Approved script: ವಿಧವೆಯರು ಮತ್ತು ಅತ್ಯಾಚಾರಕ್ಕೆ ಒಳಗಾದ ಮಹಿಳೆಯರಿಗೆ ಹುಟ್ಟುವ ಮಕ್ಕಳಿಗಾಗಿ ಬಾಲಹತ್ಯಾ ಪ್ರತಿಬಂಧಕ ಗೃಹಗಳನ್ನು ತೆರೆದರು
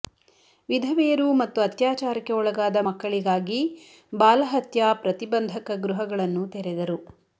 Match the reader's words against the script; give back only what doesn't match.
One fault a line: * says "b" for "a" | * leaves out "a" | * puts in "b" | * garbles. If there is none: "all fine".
* leaves out "ಮಹಿಳೆಯರಿಗೆ ಹುಟ್ಟುವ"